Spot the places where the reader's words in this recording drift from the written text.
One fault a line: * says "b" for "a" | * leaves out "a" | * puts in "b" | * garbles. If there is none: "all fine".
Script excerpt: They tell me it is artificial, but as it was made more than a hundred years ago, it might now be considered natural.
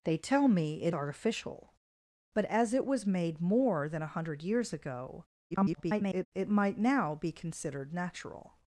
* leaves out "is"
* garbles